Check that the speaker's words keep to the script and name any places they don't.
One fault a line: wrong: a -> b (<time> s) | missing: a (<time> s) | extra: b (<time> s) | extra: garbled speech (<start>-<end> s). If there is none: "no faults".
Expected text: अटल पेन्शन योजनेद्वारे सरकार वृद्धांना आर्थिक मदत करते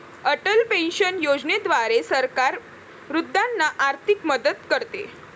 no faults